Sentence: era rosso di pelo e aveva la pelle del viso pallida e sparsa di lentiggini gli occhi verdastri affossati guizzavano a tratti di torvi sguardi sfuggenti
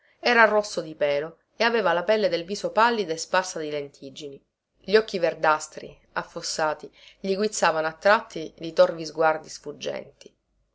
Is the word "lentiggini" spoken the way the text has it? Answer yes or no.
yes